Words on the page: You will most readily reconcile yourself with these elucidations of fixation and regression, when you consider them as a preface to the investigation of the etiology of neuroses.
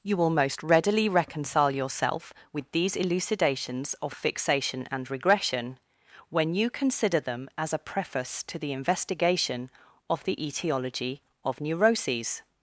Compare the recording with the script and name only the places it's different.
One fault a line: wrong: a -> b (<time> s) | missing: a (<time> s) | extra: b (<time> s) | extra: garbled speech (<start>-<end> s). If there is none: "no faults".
no faults